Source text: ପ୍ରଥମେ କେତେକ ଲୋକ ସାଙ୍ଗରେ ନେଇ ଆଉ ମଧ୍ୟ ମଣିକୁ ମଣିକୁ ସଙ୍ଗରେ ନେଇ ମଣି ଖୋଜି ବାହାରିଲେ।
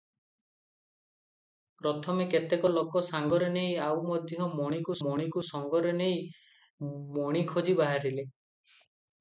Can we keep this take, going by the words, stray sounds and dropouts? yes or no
yes